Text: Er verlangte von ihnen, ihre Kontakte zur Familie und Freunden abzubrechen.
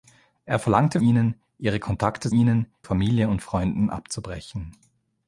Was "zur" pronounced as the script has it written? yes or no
no